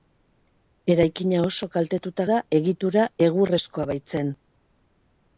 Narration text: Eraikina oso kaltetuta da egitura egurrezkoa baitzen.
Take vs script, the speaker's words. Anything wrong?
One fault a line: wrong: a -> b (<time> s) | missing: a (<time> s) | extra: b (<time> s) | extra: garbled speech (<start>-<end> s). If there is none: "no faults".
no faults